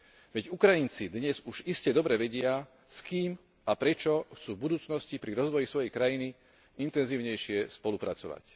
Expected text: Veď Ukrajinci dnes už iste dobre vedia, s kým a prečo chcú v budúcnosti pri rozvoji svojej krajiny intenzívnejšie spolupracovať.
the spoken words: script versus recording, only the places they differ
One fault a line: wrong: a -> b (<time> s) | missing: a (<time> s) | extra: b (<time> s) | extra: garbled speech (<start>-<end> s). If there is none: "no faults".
no faults